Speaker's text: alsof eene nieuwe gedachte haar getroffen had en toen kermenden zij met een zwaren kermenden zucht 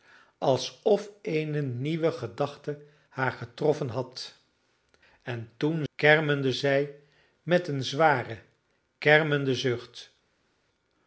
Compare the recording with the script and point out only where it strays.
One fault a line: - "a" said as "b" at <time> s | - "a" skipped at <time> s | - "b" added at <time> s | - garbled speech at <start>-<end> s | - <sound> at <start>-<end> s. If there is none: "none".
none